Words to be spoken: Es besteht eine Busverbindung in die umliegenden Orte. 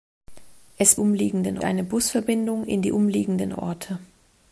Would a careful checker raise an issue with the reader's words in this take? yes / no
yes